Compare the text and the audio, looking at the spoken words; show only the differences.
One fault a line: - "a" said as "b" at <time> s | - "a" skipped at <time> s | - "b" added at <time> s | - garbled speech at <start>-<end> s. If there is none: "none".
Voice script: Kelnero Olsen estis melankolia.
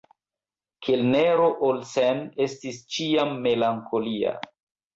- "ĉiam" added at 3.0 s